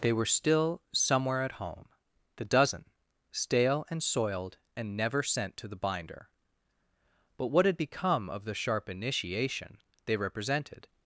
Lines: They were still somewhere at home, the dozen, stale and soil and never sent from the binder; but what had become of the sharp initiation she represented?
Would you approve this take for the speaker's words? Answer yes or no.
no